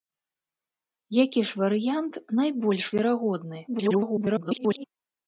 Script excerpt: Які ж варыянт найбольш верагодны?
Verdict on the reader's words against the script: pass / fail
fail